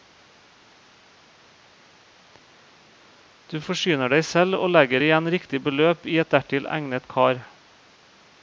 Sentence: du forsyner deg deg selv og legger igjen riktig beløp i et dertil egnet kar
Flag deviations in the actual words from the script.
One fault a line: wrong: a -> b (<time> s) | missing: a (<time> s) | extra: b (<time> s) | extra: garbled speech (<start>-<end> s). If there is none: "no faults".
missing: deg (4.2 s)